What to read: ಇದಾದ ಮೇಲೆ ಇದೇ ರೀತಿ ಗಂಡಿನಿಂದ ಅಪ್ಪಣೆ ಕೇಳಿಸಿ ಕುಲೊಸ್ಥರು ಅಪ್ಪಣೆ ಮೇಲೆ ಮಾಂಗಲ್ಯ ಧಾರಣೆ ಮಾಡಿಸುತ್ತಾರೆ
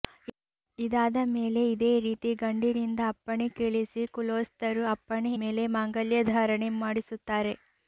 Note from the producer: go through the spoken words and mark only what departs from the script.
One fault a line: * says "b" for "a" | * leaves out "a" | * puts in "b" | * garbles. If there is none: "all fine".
all fine